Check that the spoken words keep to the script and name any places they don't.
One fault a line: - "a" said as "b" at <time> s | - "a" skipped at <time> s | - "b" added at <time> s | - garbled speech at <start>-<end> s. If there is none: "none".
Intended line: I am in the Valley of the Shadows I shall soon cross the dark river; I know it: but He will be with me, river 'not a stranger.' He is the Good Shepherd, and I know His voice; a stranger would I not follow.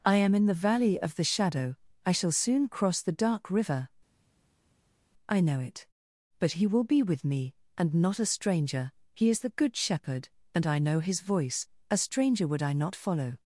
- "Shadows" said as "Shadow" at 1.2 s
- "river" said as "and" at 7.8 s